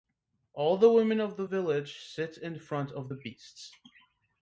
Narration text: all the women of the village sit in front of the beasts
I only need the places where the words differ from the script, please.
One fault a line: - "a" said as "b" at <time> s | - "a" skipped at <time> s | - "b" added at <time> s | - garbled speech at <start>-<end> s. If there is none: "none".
none